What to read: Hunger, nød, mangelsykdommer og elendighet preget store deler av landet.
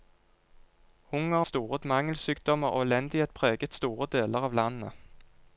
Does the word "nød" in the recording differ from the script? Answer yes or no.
yes